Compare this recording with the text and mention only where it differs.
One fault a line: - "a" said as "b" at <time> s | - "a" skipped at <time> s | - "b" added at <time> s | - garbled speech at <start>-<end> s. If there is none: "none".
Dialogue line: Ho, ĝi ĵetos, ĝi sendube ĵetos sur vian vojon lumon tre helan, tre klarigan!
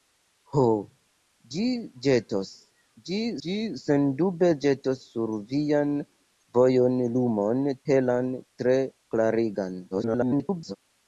- "ĝi" added at 3.5 s
- "tre" skipped at 7.7 s
- garbled speech at 9.9-10.8 s